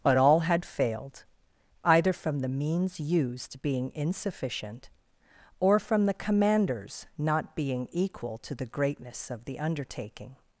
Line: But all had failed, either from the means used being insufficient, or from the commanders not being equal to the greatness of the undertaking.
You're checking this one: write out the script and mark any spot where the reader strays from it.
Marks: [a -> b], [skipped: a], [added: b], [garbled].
But all had failed, either from the means used being insufficient, or from the commanders not being equal to the greatness of the undertaking.